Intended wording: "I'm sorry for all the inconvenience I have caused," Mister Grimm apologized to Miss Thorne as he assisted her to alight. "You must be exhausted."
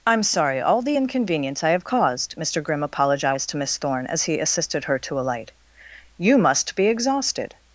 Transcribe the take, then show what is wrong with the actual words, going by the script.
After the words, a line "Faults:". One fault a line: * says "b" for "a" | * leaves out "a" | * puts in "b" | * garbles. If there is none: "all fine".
"I'm sorry all the inconvenience I have caused," Mister Grimm apologized to Miss Thorne as he assisted her to alight. "You must be exhausted."
Faults:
* leaves out "for"